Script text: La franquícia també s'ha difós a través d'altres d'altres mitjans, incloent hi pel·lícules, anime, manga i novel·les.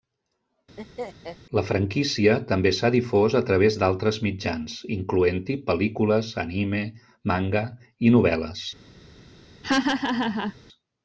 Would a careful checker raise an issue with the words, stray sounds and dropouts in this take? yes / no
yes